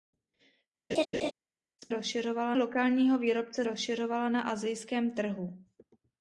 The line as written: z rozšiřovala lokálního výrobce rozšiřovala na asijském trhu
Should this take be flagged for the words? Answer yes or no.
no